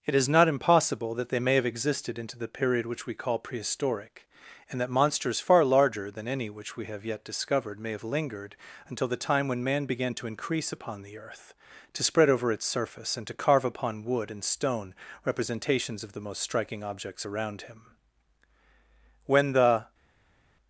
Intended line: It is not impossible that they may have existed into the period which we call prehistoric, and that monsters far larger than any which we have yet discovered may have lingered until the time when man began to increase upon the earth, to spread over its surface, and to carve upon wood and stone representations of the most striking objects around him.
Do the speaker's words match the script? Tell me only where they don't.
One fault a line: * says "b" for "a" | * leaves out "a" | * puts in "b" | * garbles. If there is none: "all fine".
* puts in "When the"